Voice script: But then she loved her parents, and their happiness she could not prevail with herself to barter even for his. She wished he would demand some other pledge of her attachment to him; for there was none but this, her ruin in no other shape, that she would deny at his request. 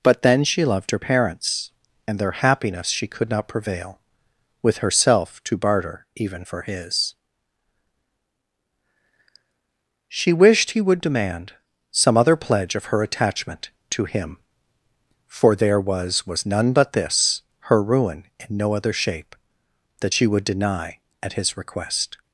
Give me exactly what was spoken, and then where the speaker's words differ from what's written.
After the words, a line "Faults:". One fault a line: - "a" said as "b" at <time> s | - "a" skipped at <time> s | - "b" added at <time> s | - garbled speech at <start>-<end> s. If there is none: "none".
But then she loved her parents, and their happiness she could not prevail with herself to barter even for his. She wished he would demand some other pledge of her attachment to him; for there was was none but this, her ruin in no other shape, that she would deny at his request.
Faults:
- "was" added at 16.3 s